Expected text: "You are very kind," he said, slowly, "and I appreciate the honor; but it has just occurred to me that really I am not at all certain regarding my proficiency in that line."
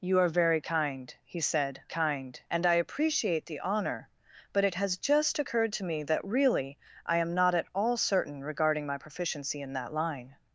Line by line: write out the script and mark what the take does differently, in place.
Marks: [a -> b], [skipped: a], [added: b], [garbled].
"You are very kind," he said, [slowly, -> kind] "and I appreciate the honor; but it has just occurred to me that really I am not at all certain regarding my proficiency in that line."